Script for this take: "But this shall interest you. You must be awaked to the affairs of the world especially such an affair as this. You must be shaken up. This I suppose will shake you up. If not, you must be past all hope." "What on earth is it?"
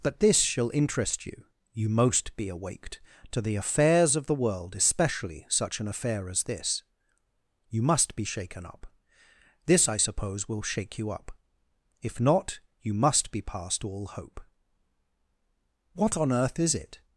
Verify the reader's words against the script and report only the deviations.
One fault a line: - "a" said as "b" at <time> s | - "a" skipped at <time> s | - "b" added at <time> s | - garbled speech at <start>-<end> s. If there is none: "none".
- "must" said as "most" at 1.9 s